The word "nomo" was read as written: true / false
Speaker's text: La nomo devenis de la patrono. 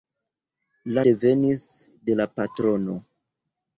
false